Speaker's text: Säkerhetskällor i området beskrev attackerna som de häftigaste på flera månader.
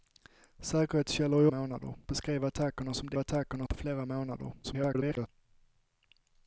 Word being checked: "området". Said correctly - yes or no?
no